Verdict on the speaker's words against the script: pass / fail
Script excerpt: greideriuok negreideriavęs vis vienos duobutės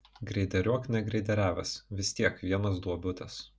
fail